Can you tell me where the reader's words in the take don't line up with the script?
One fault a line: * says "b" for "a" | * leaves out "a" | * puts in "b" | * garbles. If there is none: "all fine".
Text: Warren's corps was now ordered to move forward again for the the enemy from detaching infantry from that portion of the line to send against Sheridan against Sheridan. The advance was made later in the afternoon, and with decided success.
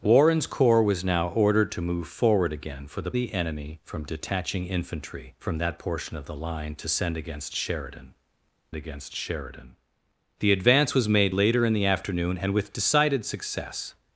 all fine